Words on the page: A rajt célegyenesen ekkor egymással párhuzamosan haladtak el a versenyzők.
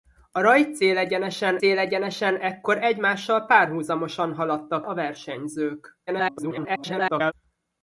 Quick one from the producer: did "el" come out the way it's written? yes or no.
no